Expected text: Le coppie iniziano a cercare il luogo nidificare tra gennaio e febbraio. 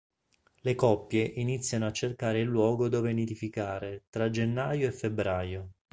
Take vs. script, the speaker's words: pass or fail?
fail